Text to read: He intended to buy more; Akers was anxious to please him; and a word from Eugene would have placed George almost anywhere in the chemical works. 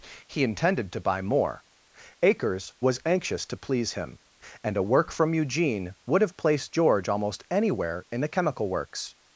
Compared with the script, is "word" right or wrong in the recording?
wrong